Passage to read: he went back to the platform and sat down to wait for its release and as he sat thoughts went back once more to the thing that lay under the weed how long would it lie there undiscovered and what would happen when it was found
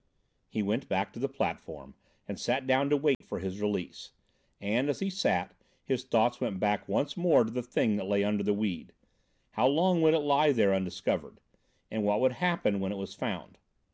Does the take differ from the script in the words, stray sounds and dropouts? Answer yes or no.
yes